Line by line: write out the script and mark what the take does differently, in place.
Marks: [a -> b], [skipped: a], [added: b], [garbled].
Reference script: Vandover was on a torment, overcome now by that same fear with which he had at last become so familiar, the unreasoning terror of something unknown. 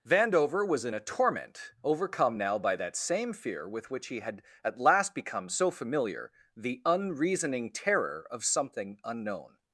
Vandover was [on -> in] a torment, overcome now by that same fear with which he had at last become so familiar, the unreasoning terror of something unknown.